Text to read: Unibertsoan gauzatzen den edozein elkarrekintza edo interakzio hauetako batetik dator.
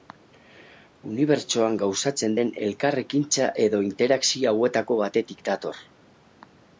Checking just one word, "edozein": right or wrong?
wrong